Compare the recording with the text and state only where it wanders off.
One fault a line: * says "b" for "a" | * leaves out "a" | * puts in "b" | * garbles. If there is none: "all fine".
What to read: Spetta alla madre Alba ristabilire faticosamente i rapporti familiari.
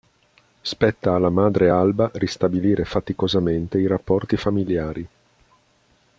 all fine